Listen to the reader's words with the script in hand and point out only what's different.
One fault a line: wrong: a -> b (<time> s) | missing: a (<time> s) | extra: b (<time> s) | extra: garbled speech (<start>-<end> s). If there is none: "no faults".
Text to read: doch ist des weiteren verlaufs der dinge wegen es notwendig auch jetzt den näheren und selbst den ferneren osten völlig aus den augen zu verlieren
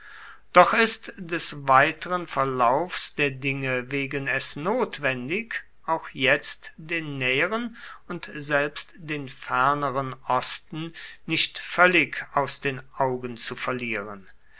extra: nicht (11.2 s)